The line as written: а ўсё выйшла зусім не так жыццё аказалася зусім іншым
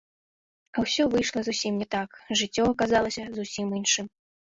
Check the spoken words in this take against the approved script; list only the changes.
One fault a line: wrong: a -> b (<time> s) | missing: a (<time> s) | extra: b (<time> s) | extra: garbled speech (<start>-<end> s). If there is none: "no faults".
no faults